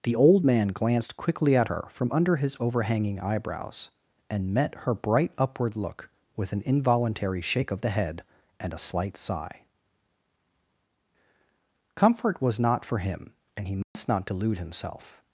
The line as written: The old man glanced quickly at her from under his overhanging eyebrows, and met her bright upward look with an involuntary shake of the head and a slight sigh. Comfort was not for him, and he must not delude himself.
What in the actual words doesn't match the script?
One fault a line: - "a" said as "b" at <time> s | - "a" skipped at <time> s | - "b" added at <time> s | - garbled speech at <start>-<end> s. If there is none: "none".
none